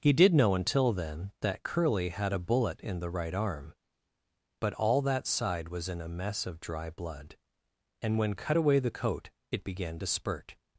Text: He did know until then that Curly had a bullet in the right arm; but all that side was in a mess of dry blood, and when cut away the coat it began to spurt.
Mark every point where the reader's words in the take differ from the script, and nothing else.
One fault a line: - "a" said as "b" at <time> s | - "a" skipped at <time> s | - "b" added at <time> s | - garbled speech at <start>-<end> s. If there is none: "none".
none